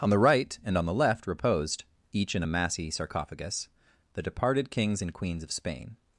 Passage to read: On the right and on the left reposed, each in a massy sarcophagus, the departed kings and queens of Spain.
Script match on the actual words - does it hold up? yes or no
yes